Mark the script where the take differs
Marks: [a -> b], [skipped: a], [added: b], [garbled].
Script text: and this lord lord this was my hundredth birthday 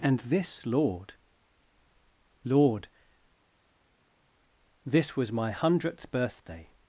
and this lord lord this was my hundredth birthday